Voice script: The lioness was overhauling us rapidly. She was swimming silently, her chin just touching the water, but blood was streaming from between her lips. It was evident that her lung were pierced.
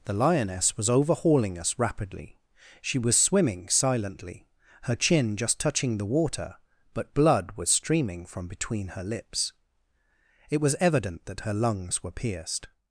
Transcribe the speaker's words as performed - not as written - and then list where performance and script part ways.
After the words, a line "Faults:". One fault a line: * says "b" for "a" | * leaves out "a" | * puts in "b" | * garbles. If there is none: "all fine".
The lioness was overhauling us rapidly. She was swimming silently, her chin just touching the water, but blood was streaming from between her lips. It was evident that her lungs were pierced.
Faults:
* says "lungs" for "lung"